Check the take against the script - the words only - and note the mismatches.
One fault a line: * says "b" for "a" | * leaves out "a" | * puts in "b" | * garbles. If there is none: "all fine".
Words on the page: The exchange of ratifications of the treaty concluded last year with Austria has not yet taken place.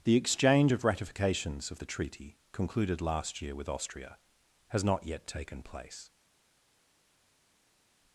all fine